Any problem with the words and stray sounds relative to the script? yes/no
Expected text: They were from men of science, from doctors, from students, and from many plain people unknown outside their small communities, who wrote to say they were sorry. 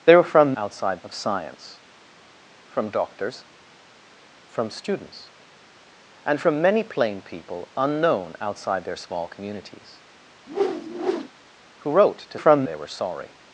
yes